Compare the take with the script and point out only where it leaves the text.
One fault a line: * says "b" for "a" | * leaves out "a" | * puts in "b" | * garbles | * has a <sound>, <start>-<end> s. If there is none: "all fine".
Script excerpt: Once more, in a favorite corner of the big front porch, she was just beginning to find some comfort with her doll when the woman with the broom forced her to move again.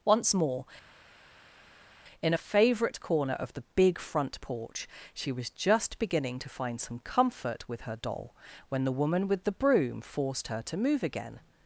all fine